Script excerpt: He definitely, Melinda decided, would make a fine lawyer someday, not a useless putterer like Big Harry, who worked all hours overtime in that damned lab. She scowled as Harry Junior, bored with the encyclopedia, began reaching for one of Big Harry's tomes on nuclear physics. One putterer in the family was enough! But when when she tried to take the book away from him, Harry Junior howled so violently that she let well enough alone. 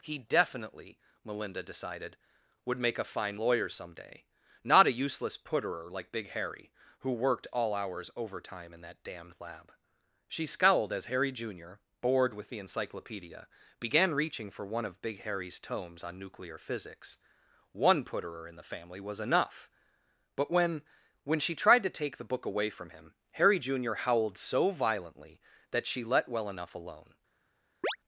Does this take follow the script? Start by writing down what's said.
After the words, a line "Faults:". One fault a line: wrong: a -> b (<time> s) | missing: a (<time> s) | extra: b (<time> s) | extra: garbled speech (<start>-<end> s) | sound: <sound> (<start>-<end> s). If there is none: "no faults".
He definitely, Melinda decided, would make a fine lawyer someday, not a useless putterer like Big Harry, who worked all hours overtime in that damned lab. She scowled as Harry Junior, bored with the encyclopedia, began reaching for one of Big Harry's tomes on nuclear physics. One putterer in the family was enough! But when when she tried to take the book away from him, Harry Junior howled so violently that she let well enough alone.
Faults:
sound: chirp (27.8-28.0 s)